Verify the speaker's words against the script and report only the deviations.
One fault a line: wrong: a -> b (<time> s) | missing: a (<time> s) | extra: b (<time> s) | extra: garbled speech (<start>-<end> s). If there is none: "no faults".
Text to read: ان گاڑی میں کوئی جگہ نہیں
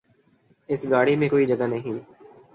wrong: ان -> اس (0.7 s)